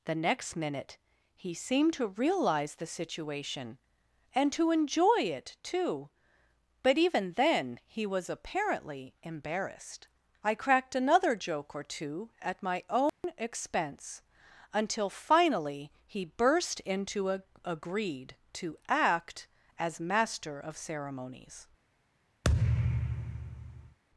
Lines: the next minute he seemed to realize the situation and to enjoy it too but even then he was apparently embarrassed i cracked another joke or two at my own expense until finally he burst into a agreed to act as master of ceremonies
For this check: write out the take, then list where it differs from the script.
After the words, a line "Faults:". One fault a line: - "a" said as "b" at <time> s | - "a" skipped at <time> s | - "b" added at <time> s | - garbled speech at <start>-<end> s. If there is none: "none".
the next minute he seemed to realize the situation and to enjoy it too but even then he was apparently embarrassed i cracked another joke or two at my own expense until finally he burst into a agreed to act as master of ceremonies
Faults:
none